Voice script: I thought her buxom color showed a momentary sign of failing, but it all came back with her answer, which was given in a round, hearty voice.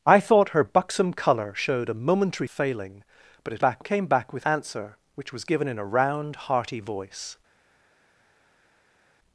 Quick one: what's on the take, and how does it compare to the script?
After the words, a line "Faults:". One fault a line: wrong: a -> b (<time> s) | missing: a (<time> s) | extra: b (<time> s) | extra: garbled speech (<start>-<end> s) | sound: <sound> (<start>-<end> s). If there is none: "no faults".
I thought her buxom color showed a momentary of failing, but it back came back with answer, which was given in a round, hearty voice.
Faults:
missing: sign (2.5 s)
wrong: all -> back (3.6 s)
missing: her (4.4 s)